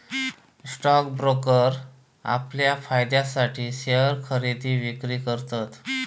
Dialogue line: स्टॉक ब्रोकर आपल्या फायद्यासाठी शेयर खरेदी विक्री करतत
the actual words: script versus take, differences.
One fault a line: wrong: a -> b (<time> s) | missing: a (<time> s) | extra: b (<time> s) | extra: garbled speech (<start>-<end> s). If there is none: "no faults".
no faults